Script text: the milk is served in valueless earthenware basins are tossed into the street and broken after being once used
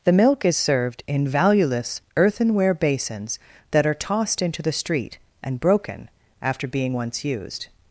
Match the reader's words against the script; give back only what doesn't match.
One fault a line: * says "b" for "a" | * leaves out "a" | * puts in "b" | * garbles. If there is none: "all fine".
* puts in "that"